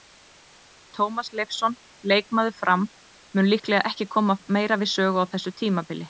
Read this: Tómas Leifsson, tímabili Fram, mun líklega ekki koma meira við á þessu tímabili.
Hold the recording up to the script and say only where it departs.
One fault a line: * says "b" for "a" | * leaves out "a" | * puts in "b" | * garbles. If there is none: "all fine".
* says "leikmaður" for "tímabili"
* puts in "sögu"